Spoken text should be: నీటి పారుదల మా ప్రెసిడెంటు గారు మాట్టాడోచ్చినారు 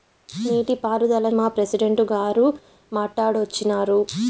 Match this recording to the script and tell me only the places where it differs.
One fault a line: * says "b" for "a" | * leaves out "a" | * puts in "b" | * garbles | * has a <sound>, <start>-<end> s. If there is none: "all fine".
all fine